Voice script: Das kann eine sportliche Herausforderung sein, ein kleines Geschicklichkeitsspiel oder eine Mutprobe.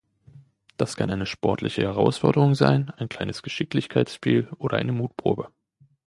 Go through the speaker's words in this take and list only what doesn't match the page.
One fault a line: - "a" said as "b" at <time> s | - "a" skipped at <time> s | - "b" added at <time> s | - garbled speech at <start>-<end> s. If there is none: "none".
none